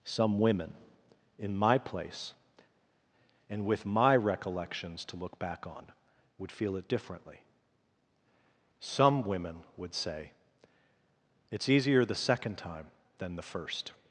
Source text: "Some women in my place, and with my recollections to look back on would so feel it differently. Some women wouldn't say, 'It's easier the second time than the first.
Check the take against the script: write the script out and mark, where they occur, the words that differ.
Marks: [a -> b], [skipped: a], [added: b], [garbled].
"Some women in my place, and with my recollections to look back on would [skipped: so] feel it differently. Some women [wouldn't -> would] say, 'It's easier the second time than the first.